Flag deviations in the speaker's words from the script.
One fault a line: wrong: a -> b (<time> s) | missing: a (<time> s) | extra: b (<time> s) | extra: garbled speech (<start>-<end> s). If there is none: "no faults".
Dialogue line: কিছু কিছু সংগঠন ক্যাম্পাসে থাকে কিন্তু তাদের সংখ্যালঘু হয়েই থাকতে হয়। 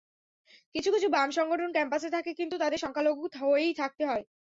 extra: বাম (1.1 s)